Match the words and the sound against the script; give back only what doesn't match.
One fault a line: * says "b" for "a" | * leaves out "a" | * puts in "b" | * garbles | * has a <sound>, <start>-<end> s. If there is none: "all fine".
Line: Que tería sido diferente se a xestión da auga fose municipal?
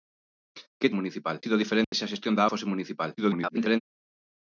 * says "municipal" for "tería"
* has a dropout, 1.8-1.9 s
* leaves out "auga"
* garbles